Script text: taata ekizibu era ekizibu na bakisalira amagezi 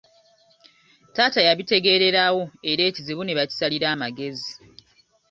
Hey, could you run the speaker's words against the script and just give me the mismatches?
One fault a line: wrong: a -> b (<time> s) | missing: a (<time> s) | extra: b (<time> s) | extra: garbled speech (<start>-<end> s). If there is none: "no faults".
wrong: ekizibu -> yabitegeererawo (1.5 s)
wrong: na -> ne (3.2 s)